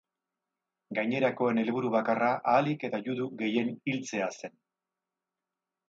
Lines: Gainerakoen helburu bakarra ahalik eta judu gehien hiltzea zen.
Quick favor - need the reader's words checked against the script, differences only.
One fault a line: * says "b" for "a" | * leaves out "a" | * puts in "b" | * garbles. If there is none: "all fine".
all fine